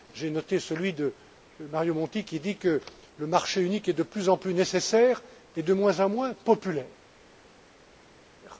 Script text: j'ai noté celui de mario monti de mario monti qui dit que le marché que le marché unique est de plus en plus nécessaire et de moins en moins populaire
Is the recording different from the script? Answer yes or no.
yes